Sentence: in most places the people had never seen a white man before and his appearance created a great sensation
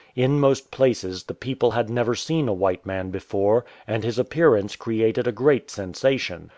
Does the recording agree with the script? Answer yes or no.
yes